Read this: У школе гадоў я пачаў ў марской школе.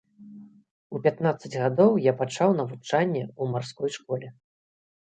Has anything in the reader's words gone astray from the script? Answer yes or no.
yes